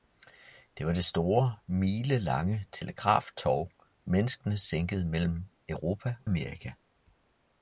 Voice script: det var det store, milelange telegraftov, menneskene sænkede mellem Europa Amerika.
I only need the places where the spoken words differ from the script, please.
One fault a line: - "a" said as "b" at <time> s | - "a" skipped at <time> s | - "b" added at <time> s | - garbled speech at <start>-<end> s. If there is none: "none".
none